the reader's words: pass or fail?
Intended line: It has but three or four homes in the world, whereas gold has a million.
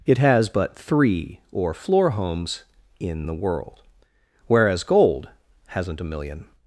fail